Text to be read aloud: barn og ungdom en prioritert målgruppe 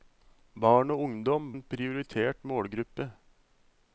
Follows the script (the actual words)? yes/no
yes